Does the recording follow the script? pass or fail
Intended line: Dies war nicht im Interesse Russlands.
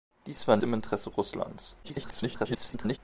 fail